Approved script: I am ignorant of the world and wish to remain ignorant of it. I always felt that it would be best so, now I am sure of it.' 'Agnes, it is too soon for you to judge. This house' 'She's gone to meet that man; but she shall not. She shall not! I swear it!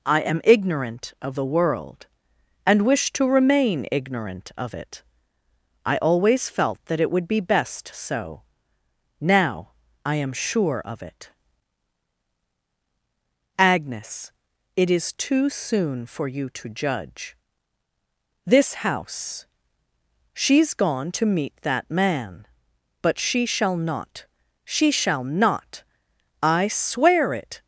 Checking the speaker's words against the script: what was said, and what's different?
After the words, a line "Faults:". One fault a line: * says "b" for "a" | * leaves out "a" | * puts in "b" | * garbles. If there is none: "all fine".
I am ignorant of the world and wish to remain ignorant of it. I always felt that it would be best so, now I am sure of it.' 'Agnes, it is too soon for you to judge. This house' 'She's gone to meet that man; but she shall not. She shall not! I swear it!
Faults:
all fine